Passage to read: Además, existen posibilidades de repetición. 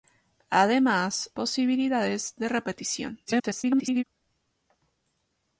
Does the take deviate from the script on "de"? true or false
false